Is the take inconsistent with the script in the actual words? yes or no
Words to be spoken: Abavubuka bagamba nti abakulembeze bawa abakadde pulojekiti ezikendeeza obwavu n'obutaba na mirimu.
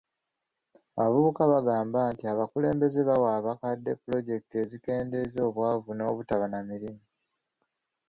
no